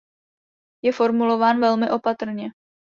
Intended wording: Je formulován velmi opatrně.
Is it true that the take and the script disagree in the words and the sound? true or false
false